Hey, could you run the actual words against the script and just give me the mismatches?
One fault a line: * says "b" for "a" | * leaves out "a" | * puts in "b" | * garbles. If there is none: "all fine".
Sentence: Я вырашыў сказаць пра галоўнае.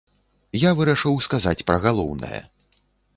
all fine